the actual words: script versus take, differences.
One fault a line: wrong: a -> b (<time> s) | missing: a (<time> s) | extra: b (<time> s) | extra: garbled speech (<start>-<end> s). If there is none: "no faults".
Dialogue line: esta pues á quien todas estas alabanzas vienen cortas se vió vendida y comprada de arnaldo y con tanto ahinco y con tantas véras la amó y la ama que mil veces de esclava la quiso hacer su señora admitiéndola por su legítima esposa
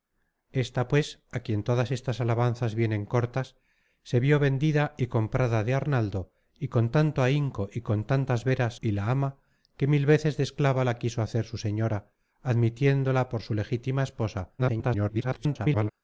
missing: la amó (8.8 s)
extra: garbled speech (14.6-15.9 s)